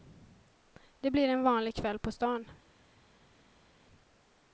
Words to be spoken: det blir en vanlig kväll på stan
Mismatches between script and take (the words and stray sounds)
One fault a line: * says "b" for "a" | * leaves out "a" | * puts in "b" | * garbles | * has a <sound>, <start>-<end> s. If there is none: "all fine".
all fine